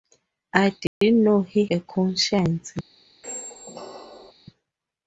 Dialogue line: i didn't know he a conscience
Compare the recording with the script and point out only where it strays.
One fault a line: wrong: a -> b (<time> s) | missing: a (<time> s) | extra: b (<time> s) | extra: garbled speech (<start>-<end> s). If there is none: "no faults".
no faults